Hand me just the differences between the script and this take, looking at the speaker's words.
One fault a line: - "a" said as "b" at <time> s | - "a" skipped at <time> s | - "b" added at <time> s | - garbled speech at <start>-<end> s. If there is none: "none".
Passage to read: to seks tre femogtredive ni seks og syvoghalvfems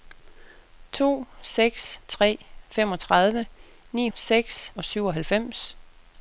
none